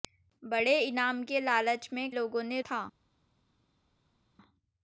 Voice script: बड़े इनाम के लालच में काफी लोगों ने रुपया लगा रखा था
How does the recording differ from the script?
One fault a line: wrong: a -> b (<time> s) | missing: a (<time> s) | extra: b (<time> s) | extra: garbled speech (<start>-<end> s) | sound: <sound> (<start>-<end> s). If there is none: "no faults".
missing: काफी (2.1 s)
missing: रुपया लगा रखा (2.6 s)